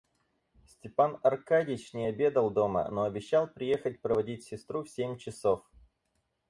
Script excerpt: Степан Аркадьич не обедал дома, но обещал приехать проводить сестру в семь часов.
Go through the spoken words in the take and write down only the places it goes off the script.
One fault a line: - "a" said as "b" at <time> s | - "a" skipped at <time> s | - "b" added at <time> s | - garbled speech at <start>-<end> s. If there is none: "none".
none